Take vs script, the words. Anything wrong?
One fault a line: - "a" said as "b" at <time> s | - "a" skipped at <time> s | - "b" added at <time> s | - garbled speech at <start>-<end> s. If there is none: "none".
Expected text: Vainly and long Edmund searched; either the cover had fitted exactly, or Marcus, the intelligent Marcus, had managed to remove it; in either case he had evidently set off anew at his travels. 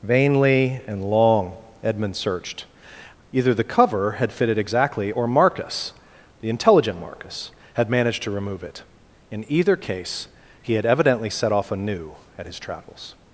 none